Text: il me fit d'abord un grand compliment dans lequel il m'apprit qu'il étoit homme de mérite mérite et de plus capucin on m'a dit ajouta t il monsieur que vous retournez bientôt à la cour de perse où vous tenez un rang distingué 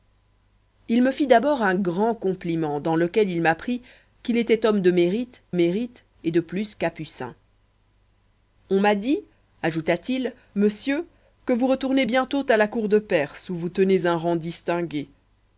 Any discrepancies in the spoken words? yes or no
no